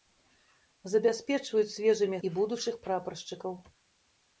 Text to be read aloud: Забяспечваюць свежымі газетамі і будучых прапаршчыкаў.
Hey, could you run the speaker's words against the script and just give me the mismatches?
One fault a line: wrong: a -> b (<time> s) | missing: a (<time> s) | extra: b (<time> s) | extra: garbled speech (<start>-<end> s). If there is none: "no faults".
missing: газетамі (2.2 s)